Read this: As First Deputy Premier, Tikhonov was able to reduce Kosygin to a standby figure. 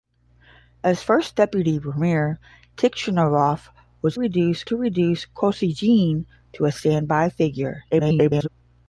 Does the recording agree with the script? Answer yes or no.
no